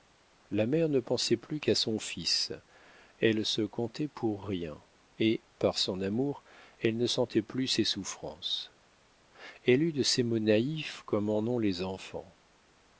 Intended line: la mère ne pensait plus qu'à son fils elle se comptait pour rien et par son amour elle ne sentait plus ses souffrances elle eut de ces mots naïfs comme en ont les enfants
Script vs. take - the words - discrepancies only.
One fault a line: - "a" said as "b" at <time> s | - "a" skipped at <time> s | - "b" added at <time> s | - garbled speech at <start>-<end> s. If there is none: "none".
none